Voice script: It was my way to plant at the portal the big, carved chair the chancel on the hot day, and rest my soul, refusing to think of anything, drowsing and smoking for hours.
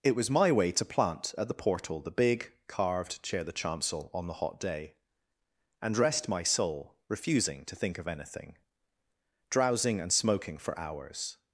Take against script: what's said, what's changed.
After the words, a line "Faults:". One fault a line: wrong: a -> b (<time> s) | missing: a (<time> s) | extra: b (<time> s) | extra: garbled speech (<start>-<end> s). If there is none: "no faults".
It was my way to plant at the portal the big, carved chair the chancel on the hot day, and rest my soul, refusing to think of anything, drowsing and smoking for hours.
Faults:
no faults